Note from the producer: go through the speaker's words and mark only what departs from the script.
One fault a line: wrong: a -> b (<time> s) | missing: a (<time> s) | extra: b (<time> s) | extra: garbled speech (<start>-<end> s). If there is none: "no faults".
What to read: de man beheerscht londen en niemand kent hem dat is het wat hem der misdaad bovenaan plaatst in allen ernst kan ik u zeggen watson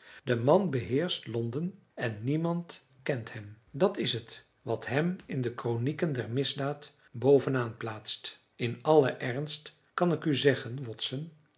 extra: in de kronieken (5.3 s)